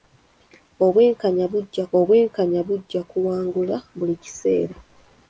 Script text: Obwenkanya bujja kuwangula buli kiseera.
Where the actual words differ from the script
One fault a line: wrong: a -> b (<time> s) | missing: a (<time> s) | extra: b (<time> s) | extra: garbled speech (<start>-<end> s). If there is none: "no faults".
extra: obwenkanya bujja (2.0 s)